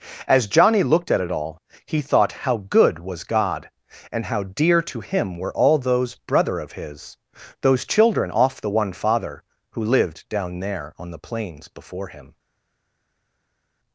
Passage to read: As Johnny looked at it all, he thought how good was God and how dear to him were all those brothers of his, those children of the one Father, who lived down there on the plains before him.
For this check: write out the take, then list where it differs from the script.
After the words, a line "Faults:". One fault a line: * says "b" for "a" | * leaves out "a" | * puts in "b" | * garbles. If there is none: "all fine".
As Johnny looked at it all, he thought how good was God and how dear to him were all those brother of his, those children off the one Father, who lived down there on the plains before him.
Faults:
* says "brother" for "brothers"
* says "off" for "of"